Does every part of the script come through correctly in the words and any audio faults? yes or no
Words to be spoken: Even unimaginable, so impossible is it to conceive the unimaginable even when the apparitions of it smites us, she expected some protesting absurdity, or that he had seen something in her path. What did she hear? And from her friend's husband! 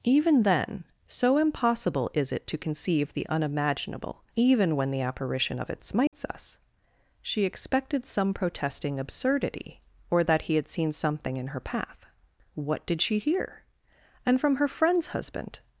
no